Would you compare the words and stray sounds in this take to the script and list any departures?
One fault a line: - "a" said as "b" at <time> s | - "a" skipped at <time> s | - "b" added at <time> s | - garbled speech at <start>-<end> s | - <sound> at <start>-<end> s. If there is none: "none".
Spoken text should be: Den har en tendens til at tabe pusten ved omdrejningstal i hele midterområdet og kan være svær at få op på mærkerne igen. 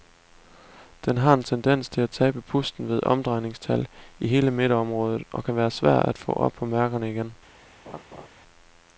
- laugh at 7.9-8.3 s